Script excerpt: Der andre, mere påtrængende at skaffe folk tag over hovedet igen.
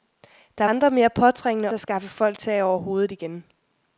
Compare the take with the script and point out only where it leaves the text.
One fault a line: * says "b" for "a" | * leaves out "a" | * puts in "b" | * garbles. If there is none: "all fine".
all fine